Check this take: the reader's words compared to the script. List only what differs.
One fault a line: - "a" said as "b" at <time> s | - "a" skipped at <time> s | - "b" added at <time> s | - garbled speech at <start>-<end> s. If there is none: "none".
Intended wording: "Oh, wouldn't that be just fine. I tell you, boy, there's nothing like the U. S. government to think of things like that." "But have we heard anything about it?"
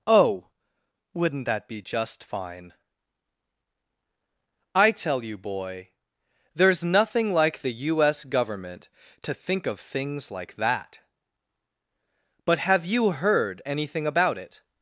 - "we" said as "you" at 12.8 s